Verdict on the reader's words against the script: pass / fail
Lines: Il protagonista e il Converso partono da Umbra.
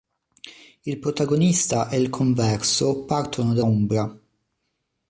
pass